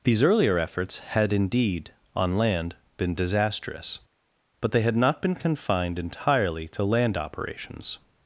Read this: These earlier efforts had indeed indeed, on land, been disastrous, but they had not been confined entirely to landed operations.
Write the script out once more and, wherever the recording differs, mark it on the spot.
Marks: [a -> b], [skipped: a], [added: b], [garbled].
These earlier efforts had indeed [skipped: indeed,] on land, been disastrous, but they had not been confined entirely to [landed -> land] operations.